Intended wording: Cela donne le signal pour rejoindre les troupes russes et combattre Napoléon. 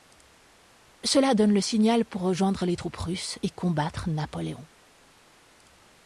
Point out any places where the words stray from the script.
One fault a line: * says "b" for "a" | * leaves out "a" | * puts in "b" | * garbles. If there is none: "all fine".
all fine